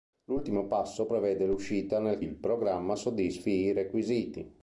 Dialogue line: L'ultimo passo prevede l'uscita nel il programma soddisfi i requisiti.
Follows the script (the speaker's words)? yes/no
yes